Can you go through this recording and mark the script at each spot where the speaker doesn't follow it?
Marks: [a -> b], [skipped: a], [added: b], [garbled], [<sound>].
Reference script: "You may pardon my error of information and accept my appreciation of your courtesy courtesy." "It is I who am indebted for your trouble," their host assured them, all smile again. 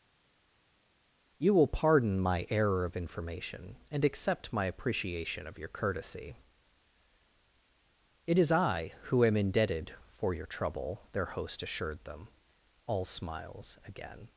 "You [may -> will] pardon my error of information and accept my appreciation of your courtesy [skipped: courtesy."] "It is I who am indebted for your trouble," their host assured them, all [smile -> smiles] again.